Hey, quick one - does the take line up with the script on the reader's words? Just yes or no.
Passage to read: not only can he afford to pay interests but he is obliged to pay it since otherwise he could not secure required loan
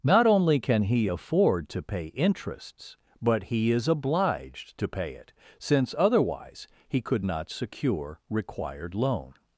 yes